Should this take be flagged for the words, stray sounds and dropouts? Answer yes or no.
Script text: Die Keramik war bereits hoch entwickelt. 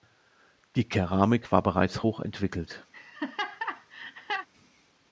yes